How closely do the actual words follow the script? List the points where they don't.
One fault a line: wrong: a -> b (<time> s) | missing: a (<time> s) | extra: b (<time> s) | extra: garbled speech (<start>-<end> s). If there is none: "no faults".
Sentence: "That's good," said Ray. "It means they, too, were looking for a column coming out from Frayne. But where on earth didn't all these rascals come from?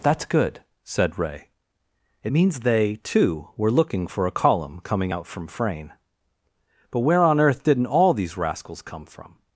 no faults